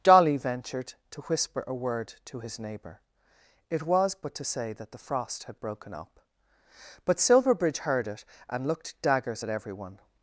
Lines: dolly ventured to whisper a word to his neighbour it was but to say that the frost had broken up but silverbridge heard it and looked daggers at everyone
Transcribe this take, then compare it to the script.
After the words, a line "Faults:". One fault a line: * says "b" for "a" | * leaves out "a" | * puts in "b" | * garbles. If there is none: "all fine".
dolly ventured to whisper a word to his neighbour it was but to say that the frost had broken up but silverbridge heard it and looked daggers at everyone
Faults:
all fine